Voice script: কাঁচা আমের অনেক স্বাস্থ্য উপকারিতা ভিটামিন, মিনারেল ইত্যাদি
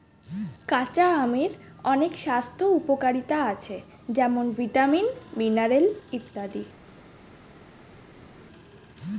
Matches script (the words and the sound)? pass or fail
fail